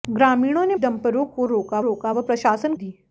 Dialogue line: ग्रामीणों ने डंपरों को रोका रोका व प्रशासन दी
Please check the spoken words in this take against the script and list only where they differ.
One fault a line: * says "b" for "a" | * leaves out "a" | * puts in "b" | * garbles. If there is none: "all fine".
all fine